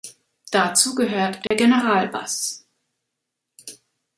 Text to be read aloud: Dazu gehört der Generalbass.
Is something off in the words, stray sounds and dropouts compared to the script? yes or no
yes